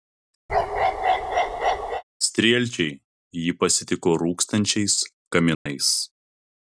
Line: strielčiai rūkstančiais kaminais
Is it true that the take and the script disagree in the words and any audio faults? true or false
true